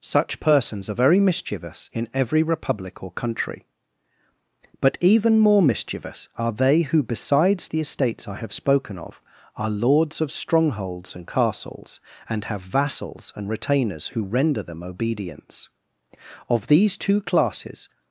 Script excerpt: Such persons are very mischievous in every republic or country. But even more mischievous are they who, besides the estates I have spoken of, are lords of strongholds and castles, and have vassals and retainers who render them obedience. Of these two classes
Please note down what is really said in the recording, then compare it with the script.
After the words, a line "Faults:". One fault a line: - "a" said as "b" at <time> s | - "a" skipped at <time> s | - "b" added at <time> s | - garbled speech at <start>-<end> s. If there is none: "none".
Such persons are very mischievous in every republic or country. But even more mischievous are they who, besides the estates I have spoken of, are lords of strongholds and castles, and have vassals and retainers who render them obedience. Of these two classes
Faults:
none